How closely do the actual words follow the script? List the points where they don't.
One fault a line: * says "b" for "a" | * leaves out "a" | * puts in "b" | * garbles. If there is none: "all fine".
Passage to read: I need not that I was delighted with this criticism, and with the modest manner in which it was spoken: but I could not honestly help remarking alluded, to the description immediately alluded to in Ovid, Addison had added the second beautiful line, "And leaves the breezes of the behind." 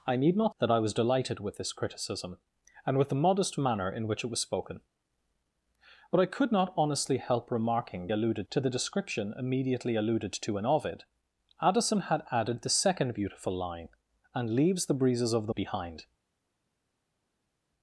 all fine